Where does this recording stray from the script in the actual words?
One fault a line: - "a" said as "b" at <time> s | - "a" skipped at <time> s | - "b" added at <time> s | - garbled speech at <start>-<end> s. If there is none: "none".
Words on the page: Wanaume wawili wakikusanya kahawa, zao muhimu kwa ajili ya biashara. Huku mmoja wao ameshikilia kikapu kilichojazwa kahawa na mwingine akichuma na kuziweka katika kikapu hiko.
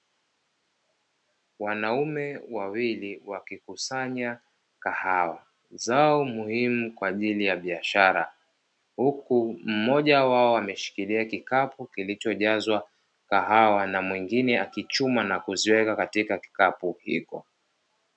none